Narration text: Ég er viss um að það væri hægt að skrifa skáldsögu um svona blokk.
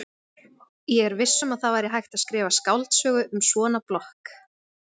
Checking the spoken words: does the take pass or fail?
pass